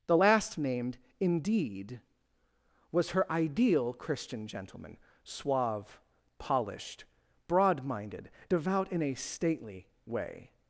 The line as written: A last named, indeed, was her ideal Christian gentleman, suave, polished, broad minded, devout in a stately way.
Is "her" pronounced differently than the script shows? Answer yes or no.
no